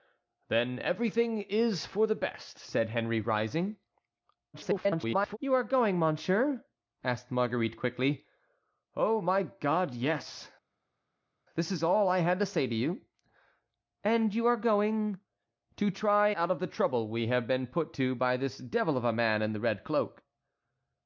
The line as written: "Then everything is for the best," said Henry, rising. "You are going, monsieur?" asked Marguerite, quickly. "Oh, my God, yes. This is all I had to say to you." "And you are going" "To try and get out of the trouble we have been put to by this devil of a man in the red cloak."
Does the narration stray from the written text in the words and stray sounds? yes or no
yes